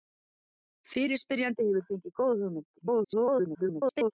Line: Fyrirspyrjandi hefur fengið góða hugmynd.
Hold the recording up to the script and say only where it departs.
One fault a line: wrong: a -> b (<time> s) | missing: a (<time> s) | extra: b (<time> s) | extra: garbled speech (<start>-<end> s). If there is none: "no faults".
extra: garbled speech (2.8-4.1 s)